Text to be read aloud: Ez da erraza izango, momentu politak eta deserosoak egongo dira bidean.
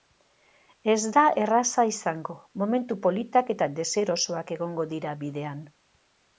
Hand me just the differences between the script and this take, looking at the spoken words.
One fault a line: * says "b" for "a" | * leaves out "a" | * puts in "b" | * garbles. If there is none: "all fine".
all fine